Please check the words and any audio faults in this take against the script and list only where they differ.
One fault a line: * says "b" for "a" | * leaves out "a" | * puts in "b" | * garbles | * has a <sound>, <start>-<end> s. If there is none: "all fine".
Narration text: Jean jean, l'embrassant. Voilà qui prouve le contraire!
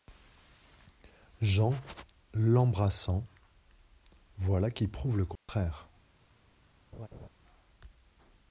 * leaves out "jean"
* has a dropout, 5.4-5.5 s
* has a laugh, 6.9-7.3 s